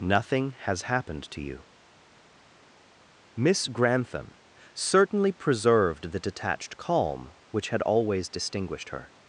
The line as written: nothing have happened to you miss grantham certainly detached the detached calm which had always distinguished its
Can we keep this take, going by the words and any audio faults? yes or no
no